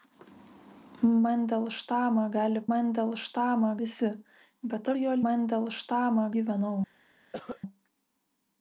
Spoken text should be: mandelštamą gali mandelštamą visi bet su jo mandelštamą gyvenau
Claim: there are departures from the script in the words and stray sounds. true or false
true